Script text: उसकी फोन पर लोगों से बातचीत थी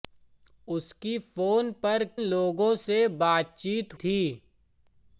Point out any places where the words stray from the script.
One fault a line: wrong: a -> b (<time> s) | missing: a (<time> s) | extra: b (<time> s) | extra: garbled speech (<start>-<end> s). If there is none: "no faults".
no faults